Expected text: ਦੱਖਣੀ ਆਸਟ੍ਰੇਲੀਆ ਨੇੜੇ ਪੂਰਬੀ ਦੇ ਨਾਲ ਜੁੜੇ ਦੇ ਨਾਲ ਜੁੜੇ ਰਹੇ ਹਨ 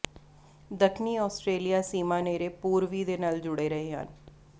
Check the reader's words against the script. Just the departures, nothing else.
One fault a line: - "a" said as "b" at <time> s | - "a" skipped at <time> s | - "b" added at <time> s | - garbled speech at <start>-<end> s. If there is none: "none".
- "ਸੀਮਾ" added at 1.8 s
- "ਦੇ ਨਾਲ ਜੁੜੇ" skipped at 3.7 s